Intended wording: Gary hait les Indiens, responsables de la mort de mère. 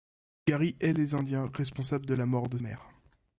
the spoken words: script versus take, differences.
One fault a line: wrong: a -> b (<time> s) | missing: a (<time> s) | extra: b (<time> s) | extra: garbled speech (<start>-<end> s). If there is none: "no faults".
no faults